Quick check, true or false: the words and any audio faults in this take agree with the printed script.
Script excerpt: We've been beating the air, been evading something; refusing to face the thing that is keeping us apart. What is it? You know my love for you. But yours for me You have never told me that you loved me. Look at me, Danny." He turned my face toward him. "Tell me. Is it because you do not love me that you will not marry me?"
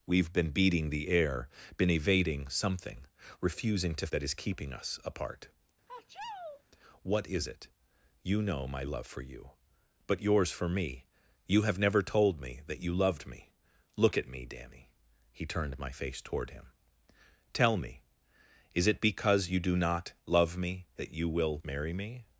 false